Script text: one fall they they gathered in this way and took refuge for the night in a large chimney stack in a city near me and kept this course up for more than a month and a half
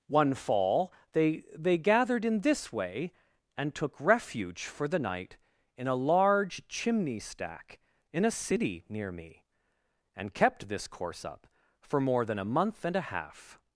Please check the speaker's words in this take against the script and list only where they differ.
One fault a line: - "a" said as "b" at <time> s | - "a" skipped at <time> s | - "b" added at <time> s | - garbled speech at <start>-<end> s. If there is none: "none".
none